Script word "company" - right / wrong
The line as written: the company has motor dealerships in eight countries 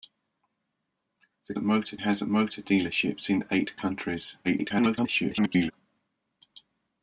wrong